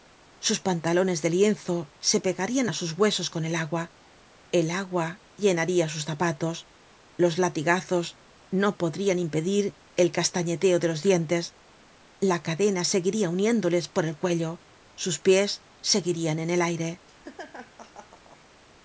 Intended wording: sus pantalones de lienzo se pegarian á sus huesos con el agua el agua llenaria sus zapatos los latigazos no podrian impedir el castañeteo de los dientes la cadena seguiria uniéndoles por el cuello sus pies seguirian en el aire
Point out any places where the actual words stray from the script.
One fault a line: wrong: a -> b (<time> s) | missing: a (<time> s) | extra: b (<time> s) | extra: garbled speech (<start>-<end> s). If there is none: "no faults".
no faults